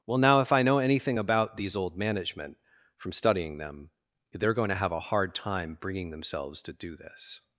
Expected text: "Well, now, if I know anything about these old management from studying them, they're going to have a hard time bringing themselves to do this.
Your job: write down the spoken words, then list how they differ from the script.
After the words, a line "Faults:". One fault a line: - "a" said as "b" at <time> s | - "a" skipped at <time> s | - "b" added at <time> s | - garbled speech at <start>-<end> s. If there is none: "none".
"Well, now, if I know anything about these old management from studying them, they're going to have a hard time bringing themselves to do this.
Faults:
none